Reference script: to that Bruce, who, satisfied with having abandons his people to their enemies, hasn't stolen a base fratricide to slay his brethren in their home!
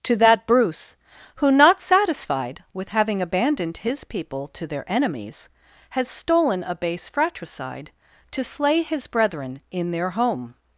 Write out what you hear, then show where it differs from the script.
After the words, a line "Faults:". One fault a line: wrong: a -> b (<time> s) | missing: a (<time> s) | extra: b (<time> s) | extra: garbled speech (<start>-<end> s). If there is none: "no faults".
to that Bruce, who, not satisfied with having abandoned his people to their enemies, has stolen a base fratricide to slay his brethren in their home!
Faults:
extra: not (1.5 s)
wrong: abandons -> abandoned (3.2 s)
wrong: hasn't -> has (5.9 s)